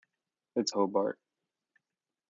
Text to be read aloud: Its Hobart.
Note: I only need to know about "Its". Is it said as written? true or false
true